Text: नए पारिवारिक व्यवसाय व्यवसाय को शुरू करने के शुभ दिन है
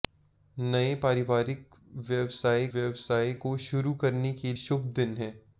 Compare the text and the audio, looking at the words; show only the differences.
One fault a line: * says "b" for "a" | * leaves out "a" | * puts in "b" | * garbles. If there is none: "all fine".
all fine